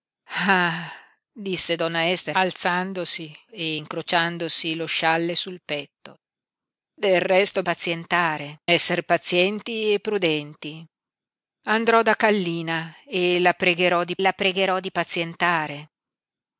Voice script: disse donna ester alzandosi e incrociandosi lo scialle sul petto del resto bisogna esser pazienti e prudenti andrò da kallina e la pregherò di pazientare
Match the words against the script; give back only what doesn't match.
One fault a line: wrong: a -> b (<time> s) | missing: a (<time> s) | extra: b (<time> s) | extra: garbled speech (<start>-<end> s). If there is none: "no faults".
wrong: bisogna -> pazientare (7.6 s)
extra: la pregherò di (14.2 s)